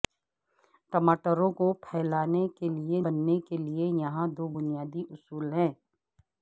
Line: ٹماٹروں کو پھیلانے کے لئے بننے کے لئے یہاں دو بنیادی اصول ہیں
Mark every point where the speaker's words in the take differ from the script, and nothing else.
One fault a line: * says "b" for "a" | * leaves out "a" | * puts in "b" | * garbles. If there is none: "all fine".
all fine